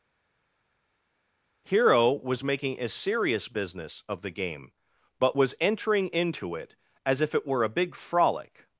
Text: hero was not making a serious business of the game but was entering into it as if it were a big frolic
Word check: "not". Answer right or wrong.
wrong